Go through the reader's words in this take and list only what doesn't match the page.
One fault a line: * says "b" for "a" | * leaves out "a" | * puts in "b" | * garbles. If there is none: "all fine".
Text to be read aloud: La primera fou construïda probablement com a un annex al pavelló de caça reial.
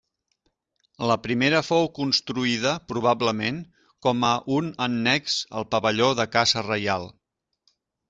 all fine